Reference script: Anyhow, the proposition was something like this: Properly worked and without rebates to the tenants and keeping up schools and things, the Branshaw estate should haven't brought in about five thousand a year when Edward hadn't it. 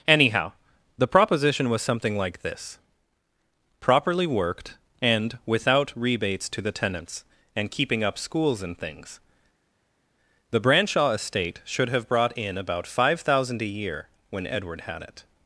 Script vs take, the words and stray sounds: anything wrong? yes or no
yes